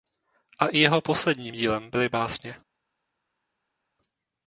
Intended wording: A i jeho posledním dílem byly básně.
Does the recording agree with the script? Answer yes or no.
yes